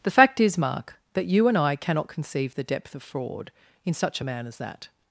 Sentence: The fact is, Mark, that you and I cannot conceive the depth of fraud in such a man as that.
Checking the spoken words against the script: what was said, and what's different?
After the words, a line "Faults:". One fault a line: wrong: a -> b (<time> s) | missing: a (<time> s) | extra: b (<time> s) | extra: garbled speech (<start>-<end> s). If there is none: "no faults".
The fact is, Mark, that you and I cannot conceive the depth of fraud in such a man as that.
Faults:
no faults